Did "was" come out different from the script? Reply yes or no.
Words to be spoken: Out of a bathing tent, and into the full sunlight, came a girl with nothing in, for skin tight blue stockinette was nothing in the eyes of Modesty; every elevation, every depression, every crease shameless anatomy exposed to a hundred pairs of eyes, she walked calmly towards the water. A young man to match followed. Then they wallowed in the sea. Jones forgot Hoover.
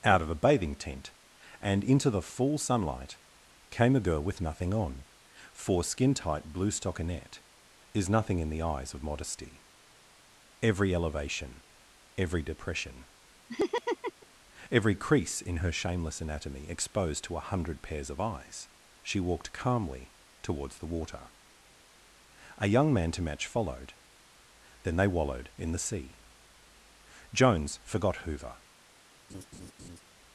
yes